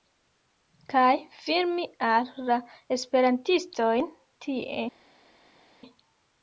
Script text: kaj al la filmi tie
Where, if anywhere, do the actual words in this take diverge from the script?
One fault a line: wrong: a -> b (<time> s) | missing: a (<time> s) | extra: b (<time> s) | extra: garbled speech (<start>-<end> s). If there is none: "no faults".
extra: filmi (1.4 s)
wrong: filmi -> esperantistojn (3.0 s)